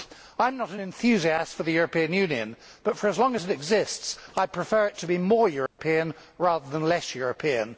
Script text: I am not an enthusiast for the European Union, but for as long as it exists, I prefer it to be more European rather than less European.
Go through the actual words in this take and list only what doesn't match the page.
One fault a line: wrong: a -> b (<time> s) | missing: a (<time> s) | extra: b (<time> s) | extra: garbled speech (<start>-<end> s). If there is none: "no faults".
no faults